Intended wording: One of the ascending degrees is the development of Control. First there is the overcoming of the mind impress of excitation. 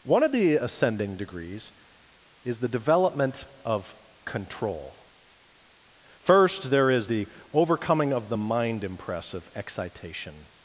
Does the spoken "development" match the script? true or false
true